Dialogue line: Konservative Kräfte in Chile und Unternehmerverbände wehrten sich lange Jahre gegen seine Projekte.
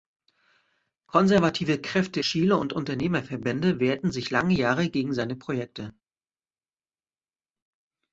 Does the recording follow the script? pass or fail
fail